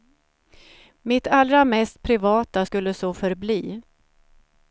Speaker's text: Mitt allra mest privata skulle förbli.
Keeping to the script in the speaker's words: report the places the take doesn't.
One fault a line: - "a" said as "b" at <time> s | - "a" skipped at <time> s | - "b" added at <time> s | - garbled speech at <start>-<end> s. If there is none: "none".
- "så" added at 2.9 s